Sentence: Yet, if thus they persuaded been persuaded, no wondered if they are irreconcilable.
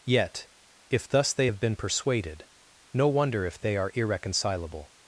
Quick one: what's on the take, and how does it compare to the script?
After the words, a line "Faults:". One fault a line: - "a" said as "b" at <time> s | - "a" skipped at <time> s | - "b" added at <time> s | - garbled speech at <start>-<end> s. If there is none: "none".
Yet, if thus they have been persuaded, no wonder if they are irreconcilable.
Faults:
- "persuaded" said as "have" at 1.4 s
- "wondered" said as "wonder" at 3.1 s